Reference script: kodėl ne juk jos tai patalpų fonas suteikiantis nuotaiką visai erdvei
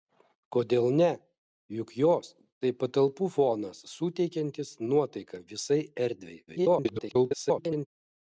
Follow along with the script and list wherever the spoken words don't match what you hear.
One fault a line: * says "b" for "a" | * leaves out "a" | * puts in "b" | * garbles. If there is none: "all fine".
* garbles